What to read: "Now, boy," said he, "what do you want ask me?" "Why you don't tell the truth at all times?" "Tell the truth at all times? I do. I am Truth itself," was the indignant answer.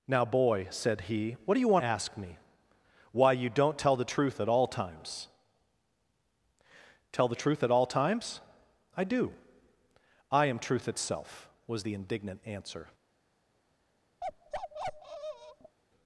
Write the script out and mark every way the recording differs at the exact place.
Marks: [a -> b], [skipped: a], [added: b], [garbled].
"Now, boy," said he, "what do you want ask me?" "Why you don't tell the truth at all times?" "Tell the truth at all times? I do. I am Truth itself," was the indignant answer.